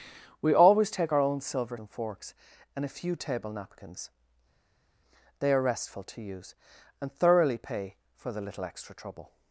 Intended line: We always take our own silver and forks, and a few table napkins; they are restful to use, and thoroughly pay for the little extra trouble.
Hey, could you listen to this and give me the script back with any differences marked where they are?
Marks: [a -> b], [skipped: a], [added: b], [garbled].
We always take our own silver and forks, and a few table napkins; they are restful to use, and thoroughly pay for the little extra trouble.